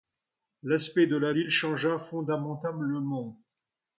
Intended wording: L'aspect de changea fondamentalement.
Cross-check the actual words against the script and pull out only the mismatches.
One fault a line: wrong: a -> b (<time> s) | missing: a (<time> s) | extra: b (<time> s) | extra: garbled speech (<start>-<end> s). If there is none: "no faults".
extra: la ville (1.1 s)